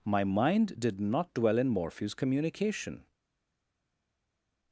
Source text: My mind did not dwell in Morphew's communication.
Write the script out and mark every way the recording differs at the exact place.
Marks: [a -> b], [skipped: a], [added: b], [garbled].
My mind did not dwell in Morphew's communication.